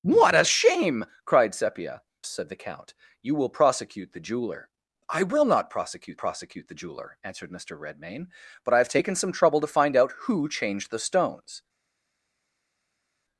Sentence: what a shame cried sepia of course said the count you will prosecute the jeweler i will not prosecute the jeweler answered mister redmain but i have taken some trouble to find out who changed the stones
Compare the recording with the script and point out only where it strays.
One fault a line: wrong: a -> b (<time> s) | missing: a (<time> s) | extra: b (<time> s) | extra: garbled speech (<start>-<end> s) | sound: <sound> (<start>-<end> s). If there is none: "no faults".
missing: of course (2.0 s)
extra: prosecute (6.2 s)